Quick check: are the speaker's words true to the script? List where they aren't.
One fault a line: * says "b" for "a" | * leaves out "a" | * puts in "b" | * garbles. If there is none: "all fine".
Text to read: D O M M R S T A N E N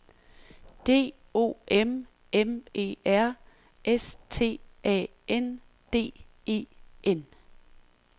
* puts in "E"
* puts in "D"